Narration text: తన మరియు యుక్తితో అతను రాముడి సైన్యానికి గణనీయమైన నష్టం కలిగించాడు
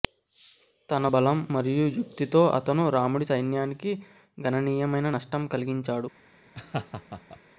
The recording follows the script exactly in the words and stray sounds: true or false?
false